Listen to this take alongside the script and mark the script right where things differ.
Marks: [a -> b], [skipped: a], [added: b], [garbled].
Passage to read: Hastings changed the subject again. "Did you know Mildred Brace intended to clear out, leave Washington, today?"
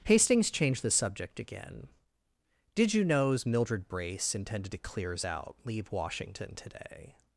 Hastings changed the subject again. "Did you [know -> knows] Mildred Brace intended to [clear -> clears] out, leave Washington, today?"